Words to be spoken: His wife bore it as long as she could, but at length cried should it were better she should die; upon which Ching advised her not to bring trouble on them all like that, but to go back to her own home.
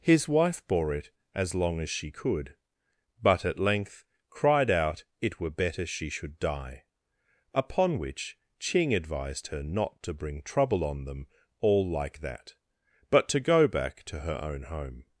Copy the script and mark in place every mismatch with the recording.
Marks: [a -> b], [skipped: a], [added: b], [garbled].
His wife bore it as long as she could, but at length cried [should -> out] it were better she should die; upon which Ching advised her not to bring trouble on them all like that, but to go back to her own home.